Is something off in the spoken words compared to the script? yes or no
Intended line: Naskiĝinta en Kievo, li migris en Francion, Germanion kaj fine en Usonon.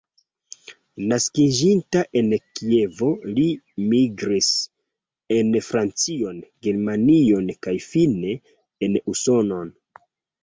no